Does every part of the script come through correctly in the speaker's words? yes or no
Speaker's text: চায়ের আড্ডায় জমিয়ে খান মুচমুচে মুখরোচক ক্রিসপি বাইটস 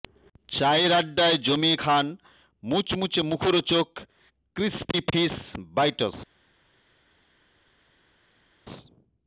no